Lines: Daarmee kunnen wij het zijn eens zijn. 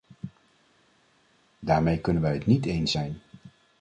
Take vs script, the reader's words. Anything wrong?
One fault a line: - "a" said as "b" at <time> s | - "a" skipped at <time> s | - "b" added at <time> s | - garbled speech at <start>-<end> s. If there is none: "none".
- "zijn" said as "niet" at 2.5 s